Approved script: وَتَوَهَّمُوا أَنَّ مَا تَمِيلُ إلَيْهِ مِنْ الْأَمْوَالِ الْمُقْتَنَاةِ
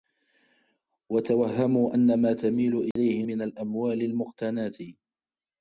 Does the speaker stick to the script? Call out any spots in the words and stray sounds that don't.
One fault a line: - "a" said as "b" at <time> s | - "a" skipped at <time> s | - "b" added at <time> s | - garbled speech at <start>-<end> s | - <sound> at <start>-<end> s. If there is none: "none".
- dropout at 2.9-3.0 s